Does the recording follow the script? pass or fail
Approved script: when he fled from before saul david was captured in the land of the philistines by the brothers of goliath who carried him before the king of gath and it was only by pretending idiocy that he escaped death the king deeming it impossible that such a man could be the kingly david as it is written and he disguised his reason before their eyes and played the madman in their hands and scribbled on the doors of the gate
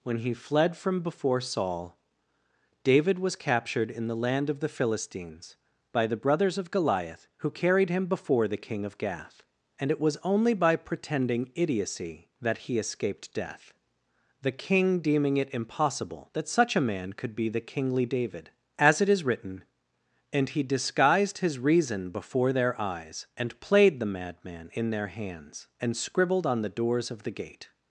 pass